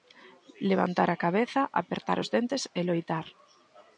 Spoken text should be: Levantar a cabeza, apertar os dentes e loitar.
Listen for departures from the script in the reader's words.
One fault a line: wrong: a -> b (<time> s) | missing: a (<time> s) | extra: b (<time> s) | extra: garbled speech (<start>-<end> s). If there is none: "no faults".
no faults